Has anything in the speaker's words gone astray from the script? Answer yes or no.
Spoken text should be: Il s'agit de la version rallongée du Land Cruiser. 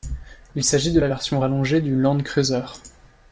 no